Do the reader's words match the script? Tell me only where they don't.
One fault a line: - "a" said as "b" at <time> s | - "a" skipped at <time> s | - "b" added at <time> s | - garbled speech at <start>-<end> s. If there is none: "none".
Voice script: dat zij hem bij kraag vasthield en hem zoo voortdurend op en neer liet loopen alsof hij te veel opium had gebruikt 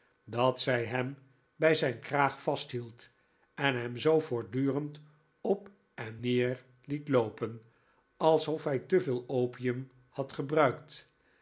- "zijn" added at 1.8 s